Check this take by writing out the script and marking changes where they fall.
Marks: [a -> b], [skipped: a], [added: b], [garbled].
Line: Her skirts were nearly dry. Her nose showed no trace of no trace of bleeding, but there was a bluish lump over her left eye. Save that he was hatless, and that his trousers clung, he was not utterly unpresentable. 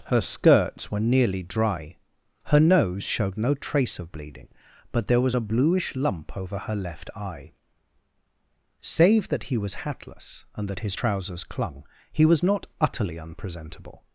Her skirts were nearly dry. Her nose showed no trace of [skipped: no trace of] bleeding, but there was a bluish lump over her left eye. Save that he was hatless, and that his trousers clung, he was not utterly unpresentable.